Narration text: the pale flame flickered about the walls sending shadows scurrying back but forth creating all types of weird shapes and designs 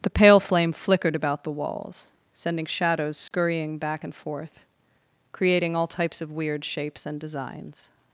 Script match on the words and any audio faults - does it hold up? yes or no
no